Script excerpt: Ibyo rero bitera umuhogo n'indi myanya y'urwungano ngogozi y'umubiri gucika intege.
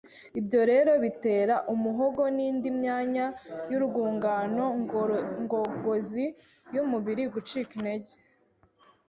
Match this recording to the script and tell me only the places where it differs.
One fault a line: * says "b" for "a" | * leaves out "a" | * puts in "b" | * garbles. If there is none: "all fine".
all fine